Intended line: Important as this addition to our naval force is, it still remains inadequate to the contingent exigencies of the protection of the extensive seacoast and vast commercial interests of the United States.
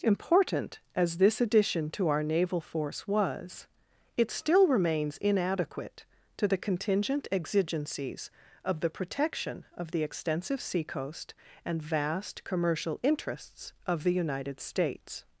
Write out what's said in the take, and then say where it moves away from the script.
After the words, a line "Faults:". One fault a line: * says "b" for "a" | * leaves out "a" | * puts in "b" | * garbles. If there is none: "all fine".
Important as this addition to our naval force was, it still remains inadequate to the contingent exigencies of the protection of the extensive seacoast and vast commercial interests of the United States.
Faults:
* says "was" for "is"